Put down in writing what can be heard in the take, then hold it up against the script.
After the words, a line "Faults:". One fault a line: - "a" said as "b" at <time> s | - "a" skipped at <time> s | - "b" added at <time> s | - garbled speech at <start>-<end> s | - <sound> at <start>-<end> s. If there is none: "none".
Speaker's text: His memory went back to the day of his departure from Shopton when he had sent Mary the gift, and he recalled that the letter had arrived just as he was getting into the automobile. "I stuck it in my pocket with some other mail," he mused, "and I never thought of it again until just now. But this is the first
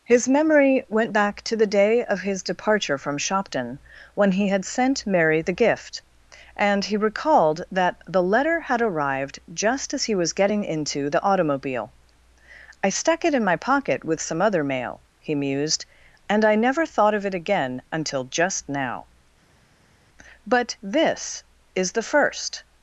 His memory went back to the day of his departure from Shopton when he had sent Mary the gift, and he recalled that the letter had arrived just as he was getting into the automobile. "I stuck it in my pocket with some other mail," he mused, "and I never thought of it again until just now. But this is the first
Faults:
none